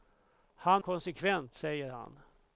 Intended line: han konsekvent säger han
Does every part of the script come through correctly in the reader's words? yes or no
yes